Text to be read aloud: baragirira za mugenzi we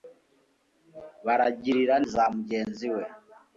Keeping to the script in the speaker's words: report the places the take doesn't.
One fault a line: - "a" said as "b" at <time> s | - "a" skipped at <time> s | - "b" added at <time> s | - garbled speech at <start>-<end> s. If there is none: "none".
none